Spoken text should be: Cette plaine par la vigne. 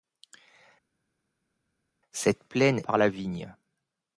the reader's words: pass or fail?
pass